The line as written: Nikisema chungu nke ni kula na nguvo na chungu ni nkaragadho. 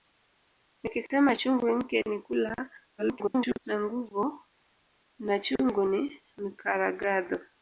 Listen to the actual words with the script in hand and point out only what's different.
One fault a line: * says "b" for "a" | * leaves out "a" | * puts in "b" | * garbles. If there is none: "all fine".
* garbles